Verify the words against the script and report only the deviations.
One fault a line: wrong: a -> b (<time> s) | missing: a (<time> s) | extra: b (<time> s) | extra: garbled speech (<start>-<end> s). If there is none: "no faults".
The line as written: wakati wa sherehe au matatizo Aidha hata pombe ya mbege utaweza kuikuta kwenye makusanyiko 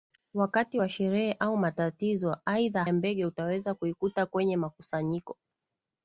missing: hata pombe (2.8 s)